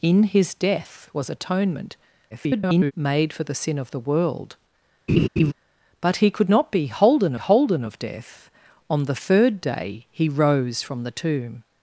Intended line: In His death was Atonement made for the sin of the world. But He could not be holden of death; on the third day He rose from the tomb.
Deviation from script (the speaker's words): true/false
true